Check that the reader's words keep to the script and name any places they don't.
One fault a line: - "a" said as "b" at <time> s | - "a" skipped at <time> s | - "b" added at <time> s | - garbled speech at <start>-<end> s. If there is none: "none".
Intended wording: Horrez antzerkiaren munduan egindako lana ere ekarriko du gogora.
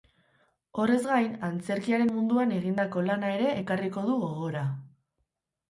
- "gain" added at 1.1 s